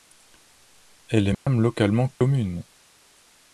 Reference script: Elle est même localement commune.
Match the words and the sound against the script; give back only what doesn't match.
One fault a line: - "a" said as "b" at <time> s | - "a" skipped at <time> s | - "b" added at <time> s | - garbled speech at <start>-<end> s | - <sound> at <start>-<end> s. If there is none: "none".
- dropout at 1.3-1.5 s
- dropout at 2.1-2.2 s